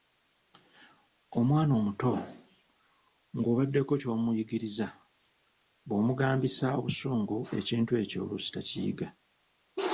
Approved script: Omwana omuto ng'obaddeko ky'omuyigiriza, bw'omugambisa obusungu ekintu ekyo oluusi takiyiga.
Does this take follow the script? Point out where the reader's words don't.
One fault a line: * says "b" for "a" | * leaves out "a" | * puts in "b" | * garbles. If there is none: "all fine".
all fine